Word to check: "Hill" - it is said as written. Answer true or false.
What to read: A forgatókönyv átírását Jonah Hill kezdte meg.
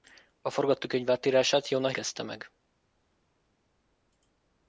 false